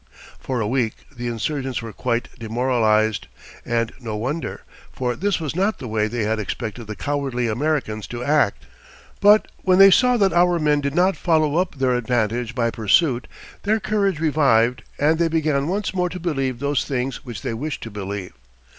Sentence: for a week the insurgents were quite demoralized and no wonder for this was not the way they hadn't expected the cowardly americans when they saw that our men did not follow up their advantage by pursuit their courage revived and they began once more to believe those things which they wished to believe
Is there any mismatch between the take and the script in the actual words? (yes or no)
yes